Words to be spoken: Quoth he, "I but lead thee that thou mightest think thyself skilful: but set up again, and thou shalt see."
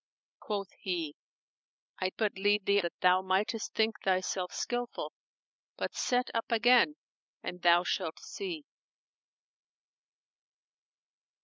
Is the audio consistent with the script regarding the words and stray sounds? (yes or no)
yes